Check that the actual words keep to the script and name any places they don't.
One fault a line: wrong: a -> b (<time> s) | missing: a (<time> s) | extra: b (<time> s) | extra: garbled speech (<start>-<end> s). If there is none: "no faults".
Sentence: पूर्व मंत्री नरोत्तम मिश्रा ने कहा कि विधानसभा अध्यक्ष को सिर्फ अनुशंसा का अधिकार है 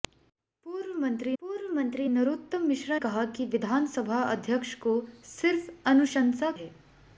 extra: पूर्व मंत्री (1.4 s)
missing: ने (3.0 s)
missing: का अधिकार (6.5 s)